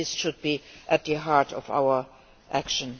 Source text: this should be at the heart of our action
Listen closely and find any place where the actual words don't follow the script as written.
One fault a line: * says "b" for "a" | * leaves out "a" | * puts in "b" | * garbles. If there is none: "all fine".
all fine